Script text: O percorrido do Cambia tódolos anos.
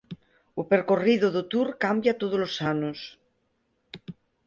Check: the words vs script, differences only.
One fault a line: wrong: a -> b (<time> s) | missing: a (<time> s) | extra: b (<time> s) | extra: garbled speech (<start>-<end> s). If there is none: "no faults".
extra: Tour (1.5 s)